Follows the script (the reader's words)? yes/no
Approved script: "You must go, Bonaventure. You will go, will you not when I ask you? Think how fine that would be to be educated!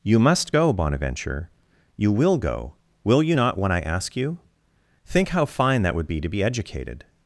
yes